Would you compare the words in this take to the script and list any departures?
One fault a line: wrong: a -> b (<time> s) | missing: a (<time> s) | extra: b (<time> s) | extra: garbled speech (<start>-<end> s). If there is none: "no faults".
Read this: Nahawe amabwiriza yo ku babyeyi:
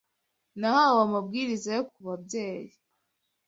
no faults